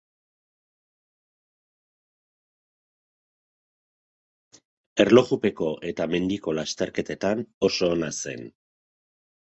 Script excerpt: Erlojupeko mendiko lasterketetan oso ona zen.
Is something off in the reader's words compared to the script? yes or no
yes